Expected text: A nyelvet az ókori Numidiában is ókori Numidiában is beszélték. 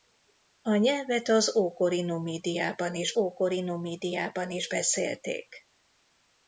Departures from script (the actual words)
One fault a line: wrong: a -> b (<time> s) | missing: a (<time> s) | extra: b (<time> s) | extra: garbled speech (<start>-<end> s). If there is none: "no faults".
no faults